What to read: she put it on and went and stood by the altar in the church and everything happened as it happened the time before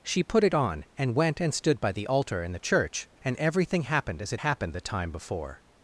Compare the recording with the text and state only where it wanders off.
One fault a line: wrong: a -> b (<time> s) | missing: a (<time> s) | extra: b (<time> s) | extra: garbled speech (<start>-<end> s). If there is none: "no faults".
no faults